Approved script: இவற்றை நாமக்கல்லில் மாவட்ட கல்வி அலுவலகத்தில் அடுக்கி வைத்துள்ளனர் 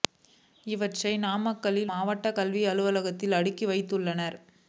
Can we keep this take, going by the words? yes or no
yes